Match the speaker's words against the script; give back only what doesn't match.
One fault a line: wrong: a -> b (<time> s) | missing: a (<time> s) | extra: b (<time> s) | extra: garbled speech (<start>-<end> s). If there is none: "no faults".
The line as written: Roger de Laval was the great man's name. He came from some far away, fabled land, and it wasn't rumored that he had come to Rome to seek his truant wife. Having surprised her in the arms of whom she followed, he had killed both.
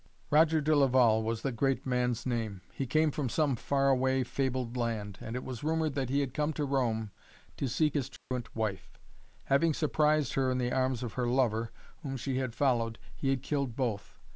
wrong: wasn't -> was (5.4 s)
extra: her lover (11.1 s)
extra: had (12.4 s)